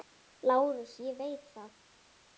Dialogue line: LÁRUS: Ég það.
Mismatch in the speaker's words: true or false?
true